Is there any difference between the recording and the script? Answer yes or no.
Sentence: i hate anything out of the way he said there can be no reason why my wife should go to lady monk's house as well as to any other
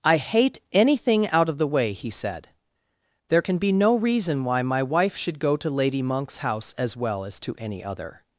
no